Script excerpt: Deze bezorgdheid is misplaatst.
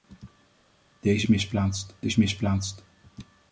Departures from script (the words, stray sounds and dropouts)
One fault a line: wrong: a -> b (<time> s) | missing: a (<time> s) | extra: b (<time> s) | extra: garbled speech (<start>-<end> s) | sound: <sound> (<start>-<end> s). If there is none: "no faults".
wrong: bezorgdheid -> misplaatst (1.3 s)